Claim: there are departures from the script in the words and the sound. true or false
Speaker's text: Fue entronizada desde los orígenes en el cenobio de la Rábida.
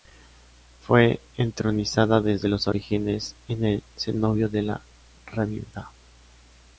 false